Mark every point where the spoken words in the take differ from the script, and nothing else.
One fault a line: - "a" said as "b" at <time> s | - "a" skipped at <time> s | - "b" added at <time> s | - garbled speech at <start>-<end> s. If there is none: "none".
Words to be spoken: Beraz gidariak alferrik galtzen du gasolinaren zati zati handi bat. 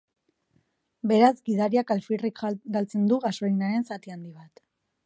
- "zati" skipped at 4.2 s